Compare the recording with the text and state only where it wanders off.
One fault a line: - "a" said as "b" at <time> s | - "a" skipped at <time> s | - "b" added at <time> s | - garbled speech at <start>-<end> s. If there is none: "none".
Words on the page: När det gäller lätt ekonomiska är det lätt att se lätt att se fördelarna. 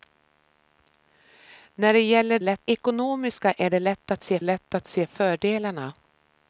none